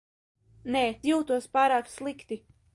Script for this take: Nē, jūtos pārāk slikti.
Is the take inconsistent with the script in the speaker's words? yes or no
no